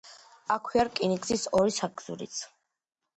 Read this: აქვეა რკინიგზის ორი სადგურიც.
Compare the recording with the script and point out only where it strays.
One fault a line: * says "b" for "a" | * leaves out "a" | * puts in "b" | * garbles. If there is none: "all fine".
all fine